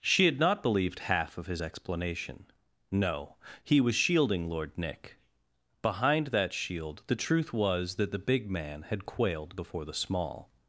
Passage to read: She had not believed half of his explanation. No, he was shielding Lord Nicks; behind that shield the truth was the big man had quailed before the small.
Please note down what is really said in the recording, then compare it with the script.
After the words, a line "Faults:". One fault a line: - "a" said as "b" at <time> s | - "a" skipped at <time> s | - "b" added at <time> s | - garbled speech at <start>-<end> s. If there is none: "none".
She had not believed half of his explanation. No, he was shielding Lord Nick; behind that shield the truth was that the big man had quailed before the small.
Faults:
- "Nicks" said as "Nick" at 4.8 s
- "that" added at 8.0 s